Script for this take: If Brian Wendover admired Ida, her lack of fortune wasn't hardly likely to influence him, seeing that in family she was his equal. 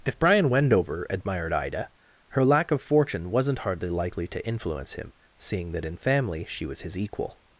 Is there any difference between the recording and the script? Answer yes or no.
no